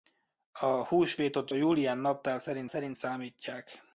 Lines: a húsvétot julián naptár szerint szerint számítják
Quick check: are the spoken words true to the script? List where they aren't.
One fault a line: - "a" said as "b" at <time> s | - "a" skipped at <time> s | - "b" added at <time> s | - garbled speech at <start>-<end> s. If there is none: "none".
none